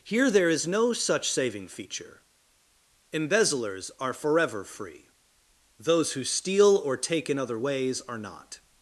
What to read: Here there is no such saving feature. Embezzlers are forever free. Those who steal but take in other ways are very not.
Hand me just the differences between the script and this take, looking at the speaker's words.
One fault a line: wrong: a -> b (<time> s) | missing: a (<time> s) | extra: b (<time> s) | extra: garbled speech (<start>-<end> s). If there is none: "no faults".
wrong: but -> or (6.8 s)
missing: very (8.2 s)